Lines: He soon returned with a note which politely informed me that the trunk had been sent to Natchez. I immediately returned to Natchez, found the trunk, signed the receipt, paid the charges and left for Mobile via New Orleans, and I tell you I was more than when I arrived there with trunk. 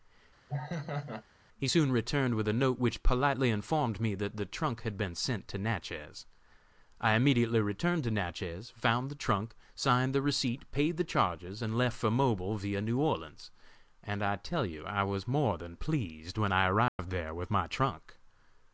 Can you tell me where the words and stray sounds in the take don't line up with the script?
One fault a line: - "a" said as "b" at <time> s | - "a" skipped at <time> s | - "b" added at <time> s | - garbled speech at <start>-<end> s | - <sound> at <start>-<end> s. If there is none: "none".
- laugh at 0.5-1.2 s
- "pleased" added at 15.8 s
- dropout at 16.9-17.0 s
- "my" added at 17.5 s